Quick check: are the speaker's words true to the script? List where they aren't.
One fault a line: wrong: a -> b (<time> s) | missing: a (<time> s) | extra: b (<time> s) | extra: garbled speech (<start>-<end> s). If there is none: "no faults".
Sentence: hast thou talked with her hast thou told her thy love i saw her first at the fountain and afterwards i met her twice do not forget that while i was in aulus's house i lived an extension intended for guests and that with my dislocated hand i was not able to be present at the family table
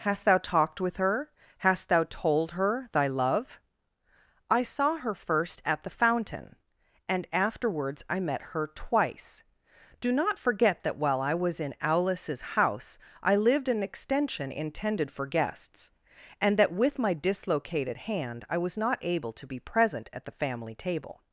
no faults